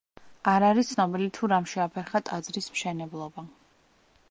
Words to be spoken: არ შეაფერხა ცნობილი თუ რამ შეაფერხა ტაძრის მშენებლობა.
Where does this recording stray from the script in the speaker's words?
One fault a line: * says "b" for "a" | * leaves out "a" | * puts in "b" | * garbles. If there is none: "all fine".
* says "არის" for "შეაფერხა"